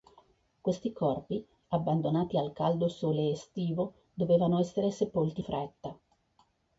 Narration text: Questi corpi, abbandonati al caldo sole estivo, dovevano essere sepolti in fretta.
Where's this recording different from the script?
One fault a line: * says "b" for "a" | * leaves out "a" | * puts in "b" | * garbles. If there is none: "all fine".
* leaves out "in"